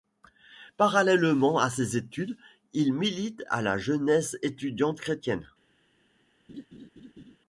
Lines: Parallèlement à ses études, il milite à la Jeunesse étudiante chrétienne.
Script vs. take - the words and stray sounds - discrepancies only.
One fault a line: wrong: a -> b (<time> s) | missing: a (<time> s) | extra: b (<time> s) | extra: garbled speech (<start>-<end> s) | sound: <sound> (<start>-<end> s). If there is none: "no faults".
sound: laugh (6.5-7.4 s)